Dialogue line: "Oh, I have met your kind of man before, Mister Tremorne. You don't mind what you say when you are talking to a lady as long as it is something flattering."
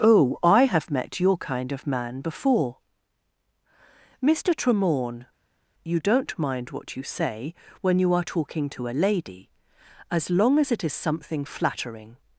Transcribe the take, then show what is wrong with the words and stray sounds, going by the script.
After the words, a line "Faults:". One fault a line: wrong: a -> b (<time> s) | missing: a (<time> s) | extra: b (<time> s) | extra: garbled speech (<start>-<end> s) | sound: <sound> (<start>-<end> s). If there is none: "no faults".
"Oh, I have met your kind of man before, Mister Tremorne. You don't mind what you say when you are talking to a lady as long as it is something flattering."
Faults:
no faults